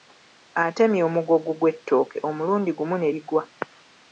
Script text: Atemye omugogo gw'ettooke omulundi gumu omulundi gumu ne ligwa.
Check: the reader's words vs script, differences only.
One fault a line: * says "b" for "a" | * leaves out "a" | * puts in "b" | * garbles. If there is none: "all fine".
* leaves out "omulundi gumu"